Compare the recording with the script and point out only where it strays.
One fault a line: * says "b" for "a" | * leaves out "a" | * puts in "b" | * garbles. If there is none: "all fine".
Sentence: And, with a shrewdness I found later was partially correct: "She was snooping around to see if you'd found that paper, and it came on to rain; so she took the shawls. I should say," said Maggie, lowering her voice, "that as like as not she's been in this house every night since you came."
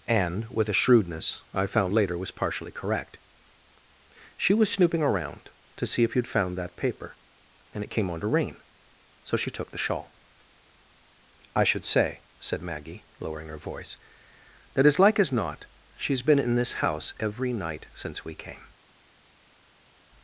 * says "shawl" for "shawls"
* says "we" for "you"